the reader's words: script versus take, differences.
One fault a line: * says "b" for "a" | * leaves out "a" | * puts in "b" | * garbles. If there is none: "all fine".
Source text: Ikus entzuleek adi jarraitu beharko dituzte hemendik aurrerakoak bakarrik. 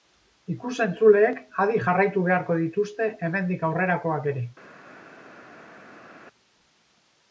* says "ere" for "bakarrik"